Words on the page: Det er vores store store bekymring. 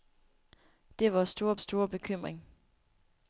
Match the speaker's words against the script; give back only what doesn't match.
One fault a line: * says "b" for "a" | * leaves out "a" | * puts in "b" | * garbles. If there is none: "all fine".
all fine